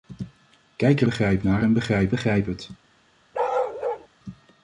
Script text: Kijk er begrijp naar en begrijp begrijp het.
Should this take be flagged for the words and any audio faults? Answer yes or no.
yes